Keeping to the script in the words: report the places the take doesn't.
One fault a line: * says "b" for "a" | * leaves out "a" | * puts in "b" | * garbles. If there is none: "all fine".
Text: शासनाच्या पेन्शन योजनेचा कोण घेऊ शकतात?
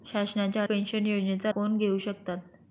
all fine